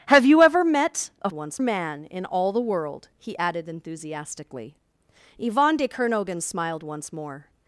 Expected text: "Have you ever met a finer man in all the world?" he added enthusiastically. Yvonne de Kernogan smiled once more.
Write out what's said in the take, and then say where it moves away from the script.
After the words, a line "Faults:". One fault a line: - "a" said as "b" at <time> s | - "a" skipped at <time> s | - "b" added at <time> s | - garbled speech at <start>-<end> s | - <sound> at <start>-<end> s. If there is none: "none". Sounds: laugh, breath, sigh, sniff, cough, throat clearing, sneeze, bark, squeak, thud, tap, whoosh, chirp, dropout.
"Have you ever met a once man in all the world?" he added enthusiastically. Yvonne de Kernogan smiled once more.
Faults:
- "finer" said as "once" at 1.3 s